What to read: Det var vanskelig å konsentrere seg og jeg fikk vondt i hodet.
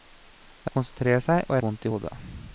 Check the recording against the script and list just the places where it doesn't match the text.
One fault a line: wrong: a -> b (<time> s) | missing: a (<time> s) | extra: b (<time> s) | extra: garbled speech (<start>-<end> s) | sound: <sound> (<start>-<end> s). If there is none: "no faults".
missing: var vanskelig (0.7 s)
missing: jeg fikk (1.6 s)